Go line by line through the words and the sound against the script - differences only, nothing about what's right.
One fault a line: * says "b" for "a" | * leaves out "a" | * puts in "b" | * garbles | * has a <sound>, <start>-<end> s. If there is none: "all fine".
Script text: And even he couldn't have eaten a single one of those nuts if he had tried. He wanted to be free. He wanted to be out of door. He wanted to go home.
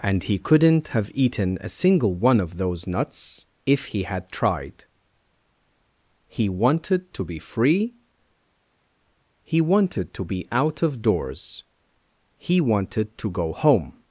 * leaves out "even"
* says "doors" for "door"